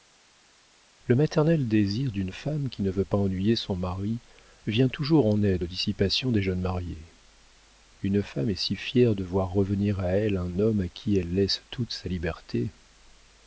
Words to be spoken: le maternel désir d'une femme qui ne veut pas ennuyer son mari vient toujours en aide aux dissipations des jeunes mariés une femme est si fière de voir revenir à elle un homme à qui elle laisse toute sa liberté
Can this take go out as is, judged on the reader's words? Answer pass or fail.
pass